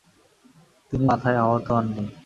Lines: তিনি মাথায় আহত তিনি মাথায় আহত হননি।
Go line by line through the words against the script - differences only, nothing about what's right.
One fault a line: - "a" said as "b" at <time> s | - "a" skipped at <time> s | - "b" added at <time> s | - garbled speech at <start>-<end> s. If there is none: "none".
- "তিনি মাথায় আহত" skipped at 1.7 s